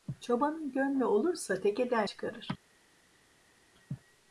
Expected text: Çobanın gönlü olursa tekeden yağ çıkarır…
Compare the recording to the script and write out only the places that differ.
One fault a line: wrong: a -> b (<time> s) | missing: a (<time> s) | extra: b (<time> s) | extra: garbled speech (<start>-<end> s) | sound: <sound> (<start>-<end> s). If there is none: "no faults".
missing: yağ (2.0 s)